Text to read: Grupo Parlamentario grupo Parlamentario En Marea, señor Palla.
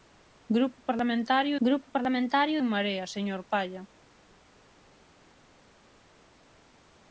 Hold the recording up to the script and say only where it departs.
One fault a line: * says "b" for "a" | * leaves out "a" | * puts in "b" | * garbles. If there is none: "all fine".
all fine